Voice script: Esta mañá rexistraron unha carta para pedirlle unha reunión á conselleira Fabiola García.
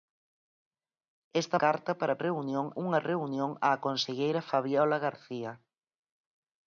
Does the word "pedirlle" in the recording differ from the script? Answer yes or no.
yes